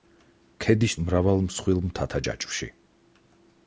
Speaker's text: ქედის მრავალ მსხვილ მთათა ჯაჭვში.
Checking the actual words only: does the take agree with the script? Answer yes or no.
yes